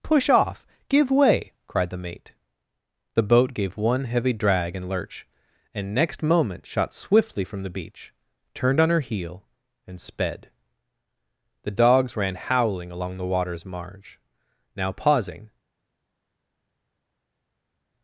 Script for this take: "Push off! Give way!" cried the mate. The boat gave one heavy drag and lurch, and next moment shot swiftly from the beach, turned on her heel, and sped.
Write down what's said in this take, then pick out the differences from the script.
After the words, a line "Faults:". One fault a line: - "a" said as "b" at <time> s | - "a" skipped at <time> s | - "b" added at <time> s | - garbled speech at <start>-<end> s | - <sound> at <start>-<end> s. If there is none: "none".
"Push off! Give way!" cried the mate. The boat gave one heavy drag and lurch, and next moment shot swiftly from the beach, turned on her heel, and sped. The dogs ran howling along the water's marge; now pausing
Faults:
- "The dogs ran howling along the water's marge now pausing" added at 11.6 s